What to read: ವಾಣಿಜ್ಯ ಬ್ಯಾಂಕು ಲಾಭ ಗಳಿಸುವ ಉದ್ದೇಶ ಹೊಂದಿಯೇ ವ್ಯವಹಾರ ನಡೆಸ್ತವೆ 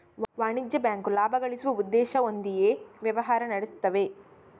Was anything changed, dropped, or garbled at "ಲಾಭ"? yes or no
no